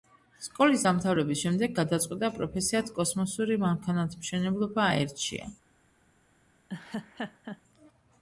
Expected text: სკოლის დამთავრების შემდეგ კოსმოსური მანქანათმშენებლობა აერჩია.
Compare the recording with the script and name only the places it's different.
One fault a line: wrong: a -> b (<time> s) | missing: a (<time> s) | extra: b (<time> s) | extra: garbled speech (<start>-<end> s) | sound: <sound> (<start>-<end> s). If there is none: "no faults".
extra: გადაწყვიტა პროფესიად (1.8 s)
sound: laugh (6.7-7.6 s)